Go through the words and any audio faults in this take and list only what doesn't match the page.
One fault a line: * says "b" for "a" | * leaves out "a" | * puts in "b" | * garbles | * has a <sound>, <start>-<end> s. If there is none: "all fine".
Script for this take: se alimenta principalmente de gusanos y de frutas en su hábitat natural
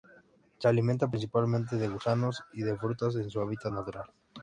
all fine